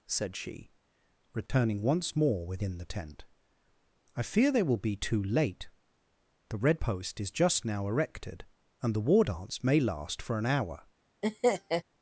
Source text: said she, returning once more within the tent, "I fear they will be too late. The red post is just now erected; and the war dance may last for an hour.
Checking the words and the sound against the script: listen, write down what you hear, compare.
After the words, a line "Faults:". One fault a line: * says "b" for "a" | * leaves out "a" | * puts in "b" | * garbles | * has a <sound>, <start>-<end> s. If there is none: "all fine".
said she, returning once more within the tent, "I fear they will be too late. The red post is just now erected; and the war dance may last for an hour.
Faults:
* has a dropout, 1.5-1.5 s
* has a laugh, 11.2-11.8 s